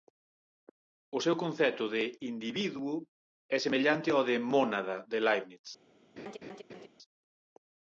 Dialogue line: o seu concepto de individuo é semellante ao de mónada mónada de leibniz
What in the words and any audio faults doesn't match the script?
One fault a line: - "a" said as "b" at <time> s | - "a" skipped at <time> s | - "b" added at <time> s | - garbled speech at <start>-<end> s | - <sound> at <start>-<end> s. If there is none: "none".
- "mónada" skipped at 5.0 s
- laugh at 6.2-6.9 s